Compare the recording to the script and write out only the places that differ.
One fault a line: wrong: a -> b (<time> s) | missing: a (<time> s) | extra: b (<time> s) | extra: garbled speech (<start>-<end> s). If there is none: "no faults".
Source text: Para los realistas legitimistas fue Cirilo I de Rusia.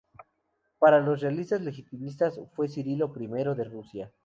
no faults